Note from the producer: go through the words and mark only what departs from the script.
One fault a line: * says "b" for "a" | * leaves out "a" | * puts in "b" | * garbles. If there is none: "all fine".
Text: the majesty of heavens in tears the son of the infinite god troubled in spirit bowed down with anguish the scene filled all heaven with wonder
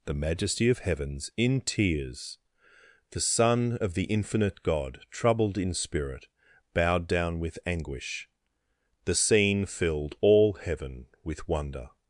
all fine